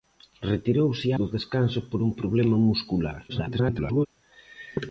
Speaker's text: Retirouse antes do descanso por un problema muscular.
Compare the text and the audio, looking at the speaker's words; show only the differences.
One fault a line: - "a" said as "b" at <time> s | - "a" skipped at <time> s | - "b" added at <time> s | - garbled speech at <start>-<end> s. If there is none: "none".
- "antes" skipped at 1.1 s
- garbled speech at 3.3-4.1 s